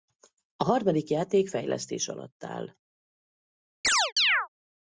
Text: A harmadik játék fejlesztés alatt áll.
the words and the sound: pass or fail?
fail